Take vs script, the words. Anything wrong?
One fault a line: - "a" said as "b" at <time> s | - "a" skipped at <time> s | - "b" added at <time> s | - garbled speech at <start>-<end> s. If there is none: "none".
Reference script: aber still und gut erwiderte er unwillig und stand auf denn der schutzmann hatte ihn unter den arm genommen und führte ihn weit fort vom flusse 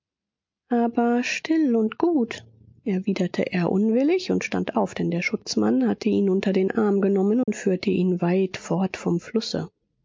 none